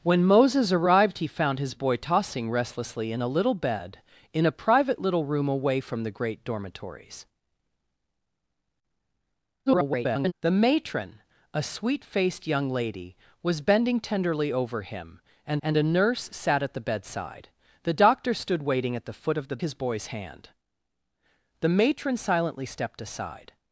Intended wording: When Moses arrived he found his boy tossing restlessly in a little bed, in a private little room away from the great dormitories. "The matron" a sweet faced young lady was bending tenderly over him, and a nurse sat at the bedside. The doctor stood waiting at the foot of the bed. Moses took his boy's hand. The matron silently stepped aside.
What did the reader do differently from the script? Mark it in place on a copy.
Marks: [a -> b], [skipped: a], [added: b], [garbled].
When Moses arrived he found his boy tossing restlessly in a little bed, in a private little room away from the great dormitories. [garbled] "The matron" a sweet faced young lady was bending tenderly over him, and [added: and] a nurse sat at the bedside. The doctor stood waiting at the foot of the [skipped: bed. Moses took] his boy's hand. The matron silently stepped aside.